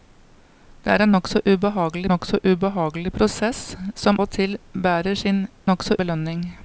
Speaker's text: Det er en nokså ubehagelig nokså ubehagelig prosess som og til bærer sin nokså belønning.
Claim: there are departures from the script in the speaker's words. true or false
false